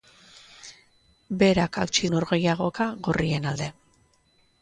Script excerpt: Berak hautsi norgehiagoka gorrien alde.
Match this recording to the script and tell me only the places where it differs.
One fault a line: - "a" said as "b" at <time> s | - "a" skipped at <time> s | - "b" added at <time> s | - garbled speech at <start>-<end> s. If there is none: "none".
none